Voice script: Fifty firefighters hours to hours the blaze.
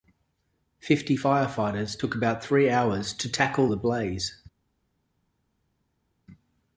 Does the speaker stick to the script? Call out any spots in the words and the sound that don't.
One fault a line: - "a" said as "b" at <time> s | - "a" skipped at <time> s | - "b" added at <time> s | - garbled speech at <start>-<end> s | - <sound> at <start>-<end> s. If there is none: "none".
- "took about three" added at 2.0 s
- "hours" said as "tackle" at 3.3 s